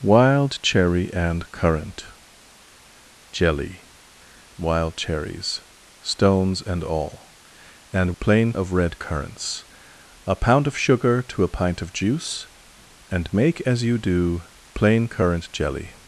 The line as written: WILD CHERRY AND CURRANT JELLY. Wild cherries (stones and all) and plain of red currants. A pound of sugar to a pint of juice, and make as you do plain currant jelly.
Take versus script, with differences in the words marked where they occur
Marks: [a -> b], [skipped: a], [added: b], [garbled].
WILD CHERRY AND CURRANT JELLY. Wild cherries (stones and all) and plain of red currants. A pound of sugar to a pint of juice, and make as you do plain currant jelly.